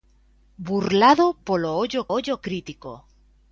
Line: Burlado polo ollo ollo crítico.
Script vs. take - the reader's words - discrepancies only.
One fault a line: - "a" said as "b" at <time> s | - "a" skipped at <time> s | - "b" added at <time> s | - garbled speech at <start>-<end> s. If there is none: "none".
none